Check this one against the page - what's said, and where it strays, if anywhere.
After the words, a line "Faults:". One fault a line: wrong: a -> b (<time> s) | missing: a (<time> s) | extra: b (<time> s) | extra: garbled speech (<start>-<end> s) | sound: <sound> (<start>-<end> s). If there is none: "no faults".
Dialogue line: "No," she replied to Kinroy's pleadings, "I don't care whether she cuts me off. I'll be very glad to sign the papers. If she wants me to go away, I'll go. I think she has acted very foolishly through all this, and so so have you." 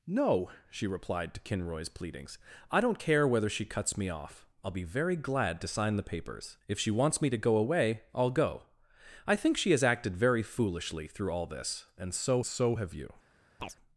"No," she replied to Kinroy's pleadings, "I don't care whether she cuts me off. I'll be very glad to sign the papers. If she wants me to go away, I'll go. I think she has acted very foolishly through all this, and so so have you."
Faults:
sound: chirp (13.6-13.8 s)